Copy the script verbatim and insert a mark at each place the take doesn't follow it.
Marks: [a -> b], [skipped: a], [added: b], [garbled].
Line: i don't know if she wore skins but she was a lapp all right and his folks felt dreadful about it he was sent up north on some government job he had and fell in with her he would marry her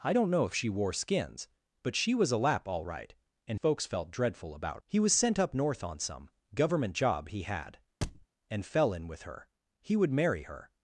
i don't know if she wore skins but she was a lapp all right and [skipped: his] folks felt dreadful about [skipped: it] he was sent up north on some government job he had and fell in with her he would marry her